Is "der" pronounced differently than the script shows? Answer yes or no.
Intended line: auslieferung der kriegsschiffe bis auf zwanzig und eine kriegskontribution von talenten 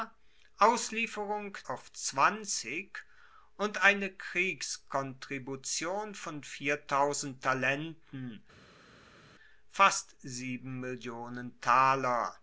yes